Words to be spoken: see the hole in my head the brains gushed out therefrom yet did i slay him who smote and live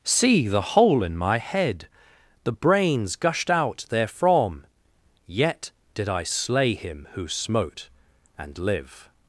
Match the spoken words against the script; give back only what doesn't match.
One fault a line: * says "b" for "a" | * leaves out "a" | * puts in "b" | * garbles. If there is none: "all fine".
all fine